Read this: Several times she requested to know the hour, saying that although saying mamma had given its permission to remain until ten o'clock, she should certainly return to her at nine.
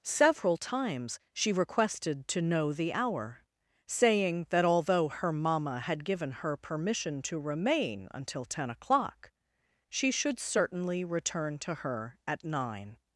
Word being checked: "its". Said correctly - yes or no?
no